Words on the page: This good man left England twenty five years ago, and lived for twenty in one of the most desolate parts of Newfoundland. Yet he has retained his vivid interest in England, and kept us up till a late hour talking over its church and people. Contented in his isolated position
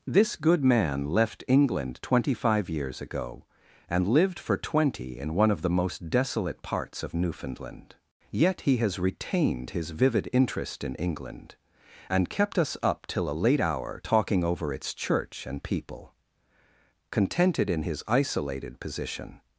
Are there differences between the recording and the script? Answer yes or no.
no